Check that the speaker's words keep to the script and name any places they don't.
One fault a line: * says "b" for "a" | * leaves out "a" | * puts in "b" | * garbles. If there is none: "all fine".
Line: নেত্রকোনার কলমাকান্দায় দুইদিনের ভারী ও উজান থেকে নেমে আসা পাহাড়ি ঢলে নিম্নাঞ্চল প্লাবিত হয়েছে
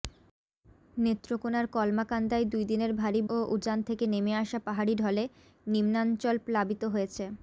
all fine